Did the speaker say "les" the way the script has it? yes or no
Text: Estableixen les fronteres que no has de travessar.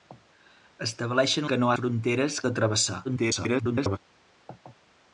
no